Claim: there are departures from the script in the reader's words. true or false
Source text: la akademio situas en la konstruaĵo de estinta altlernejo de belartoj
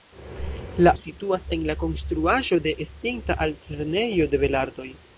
true